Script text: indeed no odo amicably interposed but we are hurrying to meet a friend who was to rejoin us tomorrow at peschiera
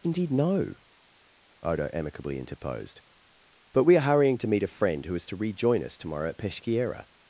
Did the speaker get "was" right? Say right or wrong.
wrong